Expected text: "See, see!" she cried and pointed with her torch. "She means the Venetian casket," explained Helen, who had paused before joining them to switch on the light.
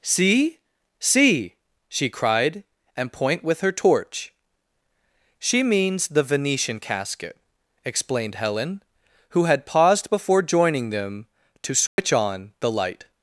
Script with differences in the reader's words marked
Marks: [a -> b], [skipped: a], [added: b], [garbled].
"See, see!" she cried and [pointed -> point] with her torch. "She means the Venetian casket," explained Helen, who had paused before joining them to switch on the light.